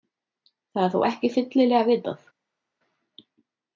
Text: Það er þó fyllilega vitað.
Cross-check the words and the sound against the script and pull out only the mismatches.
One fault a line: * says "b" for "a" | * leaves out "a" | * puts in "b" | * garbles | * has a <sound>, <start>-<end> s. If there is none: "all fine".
* puts in "ekki"